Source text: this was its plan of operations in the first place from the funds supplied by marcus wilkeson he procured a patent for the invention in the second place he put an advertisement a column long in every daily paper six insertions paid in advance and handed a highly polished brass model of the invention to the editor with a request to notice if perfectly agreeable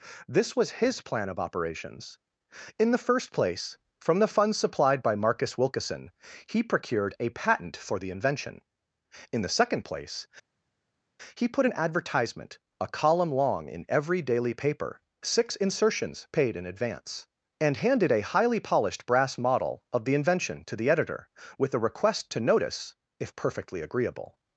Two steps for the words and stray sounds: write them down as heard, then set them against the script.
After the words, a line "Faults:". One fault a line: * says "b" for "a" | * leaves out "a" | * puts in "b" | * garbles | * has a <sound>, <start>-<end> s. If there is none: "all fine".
this was his plan of operations in the first place from the funds supplied by marcus wilkeson he procured a patent for the invention in the second place he put an advertisement a column long in every daily paper six insertions paid in advance and handed a highly polished brass model of the invention to the editor with a request to notice if perfectly agreeable
Faults:
* says "his" for "its"